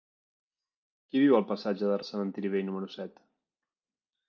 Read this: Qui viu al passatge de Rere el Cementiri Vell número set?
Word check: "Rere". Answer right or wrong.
wrong